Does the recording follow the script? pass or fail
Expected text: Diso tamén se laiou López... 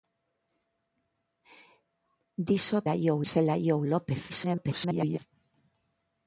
fail